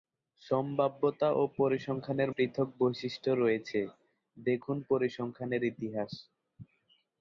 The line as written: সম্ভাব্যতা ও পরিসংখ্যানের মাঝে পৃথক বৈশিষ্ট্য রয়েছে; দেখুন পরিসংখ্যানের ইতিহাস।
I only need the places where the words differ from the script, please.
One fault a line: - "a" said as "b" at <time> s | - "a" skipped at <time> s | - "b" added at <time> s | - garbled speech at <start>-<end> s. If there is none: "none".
- "মাঝে" skipped at 2.3 s